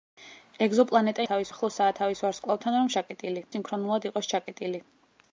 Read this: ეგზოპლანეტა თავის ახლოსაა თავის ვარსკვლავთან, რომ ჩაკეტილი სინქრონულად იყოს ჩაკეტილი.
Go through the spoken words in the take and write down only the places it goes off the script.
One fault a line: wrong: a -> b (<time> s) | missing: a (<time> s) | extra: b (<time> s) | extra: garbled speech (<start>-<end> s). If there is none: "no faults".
no faults